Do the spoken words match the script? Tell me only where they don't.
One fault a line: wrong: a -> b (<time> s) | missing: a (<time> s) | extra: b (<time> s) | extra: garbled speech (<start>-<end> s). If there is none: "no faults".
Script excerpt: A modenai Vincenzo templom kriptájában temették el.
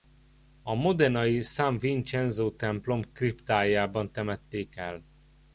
extra: San (1.4 s)